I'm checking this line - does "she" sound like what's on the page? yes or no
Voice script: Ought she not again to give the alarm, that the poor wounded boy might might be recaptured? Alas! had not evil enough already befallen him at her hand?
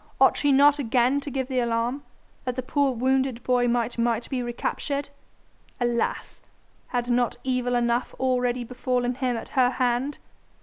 yes